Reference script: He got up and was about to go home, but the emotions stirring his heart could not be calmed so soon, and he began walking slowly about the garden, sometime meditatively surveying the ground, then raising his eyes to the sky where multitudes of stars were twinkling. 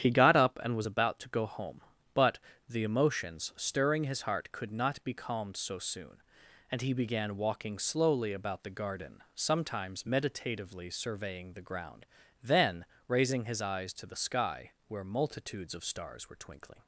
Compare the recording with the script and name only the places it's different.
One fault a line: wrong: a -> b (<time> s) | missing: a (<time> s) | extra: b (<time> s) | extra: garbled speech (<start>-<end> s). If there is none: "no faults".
wrong: sometime -> sometimes (9.3 s)